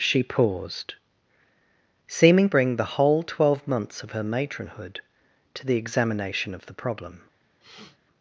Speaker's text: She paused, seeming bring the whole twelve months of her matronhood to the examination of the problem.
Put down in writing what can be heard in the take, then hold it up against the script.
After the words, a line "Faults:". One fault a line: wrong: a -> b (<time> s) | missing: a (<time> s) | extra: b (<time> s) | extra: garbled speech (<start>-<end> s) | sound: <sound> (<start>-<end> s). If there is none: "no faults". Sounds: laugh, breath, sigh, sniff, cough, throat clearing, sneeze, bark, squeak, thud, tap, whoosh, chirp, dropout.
She paused, seeming bring the whole twelve months of her matronhood to the examination of the problem.
Faults:
sound: sniff (7.6-8.0 s)